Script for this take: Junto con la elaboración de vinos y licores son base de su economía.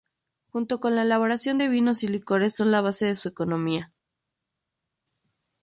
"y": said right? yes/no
yes